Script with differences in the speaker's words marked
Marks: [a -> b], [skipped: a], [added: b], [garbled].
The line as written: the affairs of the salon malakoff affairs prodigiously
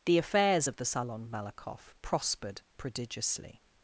the affairs of the salon malakoff [affairs -> prospered] prodigiously